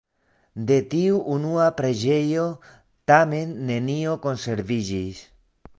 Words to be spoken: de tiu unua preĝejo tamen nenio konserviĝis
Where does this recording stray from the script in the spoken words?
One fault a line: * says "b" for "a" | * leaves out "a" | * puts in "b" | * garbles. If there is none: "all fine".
all fine